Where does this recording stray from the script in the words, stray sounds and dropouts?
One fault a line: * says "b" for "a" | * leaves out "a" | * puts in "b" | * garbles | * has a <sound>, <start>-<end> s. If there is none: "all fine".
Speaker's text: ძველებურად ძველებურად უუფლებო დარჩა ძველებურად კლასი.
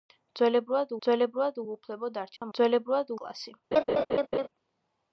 * has a dropout, 2.4-2.4 s
* has a laugh, 3.7-4.5 s